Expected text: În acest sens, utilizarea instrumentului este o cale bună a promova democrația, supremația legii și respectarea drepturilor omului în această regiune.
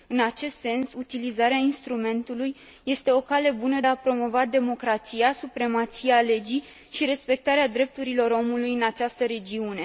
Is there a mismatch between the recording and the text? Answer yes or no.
no